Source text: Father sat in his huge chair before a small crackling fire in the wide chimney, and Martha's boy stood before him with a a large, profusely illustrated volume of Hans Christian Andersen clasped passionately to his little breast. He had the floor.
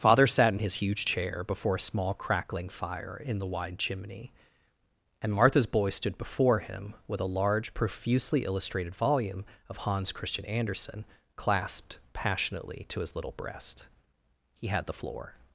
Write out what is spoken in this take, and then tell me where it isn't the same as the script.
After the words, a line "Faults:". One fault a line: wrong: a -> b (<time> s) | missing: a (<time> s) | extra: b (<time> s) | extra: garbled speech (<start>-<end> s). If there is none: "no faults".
Father sat in his huge chair before a small crackling fire in the wide chimney, and Martha's boy stood before him with a large, profusely illustrated volume of Hans Christian Andersen clasped passionately to his little breast. He had the floor.
Faults:
missing: a (7.3 s)